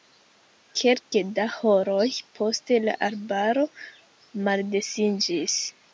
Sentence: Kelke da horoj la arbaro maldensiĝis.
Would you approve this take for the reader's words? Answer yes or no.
no